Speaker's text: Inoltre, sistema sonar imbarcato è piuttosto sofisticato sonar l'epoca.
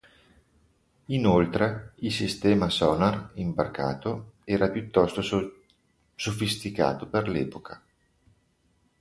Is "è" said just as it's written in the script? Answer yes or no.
no